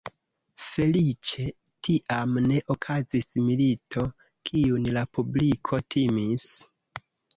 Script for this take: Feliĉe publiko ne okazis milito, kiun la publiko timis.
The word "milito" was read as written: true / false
true